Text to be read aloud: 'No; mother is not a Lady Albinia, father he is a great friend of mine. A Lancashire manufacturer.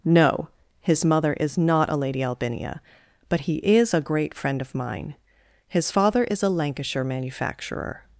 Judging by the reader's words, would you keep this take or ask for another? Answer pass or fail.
fail